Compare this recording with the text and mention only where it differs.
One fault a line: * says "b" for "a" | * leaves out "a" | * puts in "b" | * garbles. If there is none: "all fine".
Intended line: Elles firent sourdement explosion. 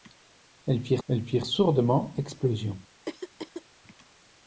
* puts in "elles firent"